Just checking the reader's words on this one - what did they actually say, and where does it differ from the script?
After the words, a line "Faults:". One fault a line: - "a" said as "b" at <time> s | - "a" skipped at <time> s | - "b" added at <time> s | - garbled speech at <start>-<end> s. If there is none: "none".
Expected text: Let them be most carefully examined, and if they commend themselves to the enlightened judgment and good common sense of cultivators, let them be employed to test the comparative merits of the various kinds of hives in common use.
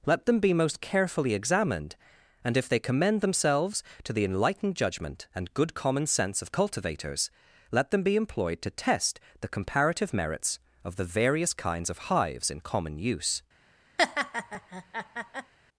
Let them be most carefully examined, and if they commend themselves to the enlightened judgment and good common sense of cultivators, let them be employed to test the comparative merits of the various kinds of hives in common use.
Faults:
none